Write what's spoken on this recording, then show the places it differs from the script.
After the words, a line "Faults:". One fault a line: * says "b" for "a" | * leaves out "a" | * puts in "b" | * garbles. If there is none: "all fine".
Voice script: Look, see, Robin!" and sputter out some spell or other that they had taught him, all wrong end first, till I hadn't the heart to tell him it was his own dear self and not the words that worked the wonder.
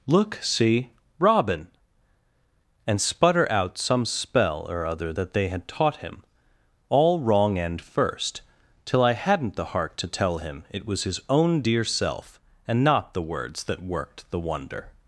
Look, see, Robin!" and sputter out some spell or other that they had taught him, all wrong end first, till I hadn't the heart to tell him it was his own dear self and not the words that worked the wonder.
Faults:
all fine